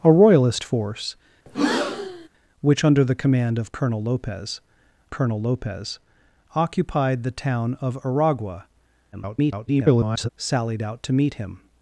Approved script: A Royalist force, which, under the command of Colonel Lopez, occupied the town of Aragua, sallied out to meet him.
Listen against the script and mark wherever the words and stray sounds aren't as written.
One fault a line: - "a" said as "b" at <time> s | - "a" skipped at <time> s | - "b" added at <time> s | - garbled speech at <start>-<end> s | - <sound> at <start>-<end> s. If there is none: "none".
- breath at 1.5-2.3 s
- "Colonel Lopez" added at 5.1 s
- garbled speech at 9.1-10.3 s